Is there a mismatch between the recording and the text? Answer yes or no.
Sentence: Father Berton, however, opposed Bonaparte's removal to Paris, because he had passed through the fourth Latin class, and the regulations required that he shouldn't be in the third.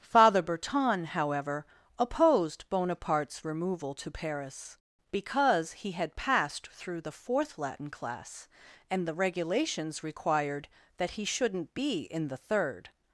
no